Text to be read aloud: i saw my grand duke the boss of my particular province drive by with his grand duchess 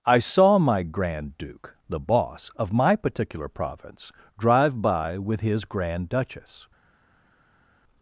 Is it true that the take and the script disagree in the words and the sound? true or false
false